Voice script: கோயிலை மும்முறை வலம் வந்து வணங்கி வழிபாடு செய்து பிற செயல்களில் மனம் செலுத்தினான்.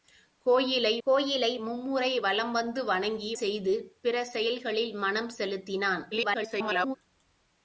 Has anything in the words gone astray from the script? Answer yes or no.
yes